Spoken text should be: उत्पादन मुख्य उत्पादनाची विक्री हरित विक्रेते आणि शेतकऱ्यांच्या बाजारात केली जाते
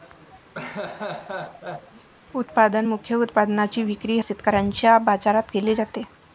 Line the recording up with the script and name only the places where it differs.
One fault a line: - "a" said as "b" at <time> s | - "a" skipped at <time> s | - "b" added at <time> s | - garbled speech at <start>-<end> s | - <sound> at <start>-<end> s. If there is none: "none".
- laugh at 0.5-2.1 s
- "हरित विक्रेते आणि" skipped at 4.2 s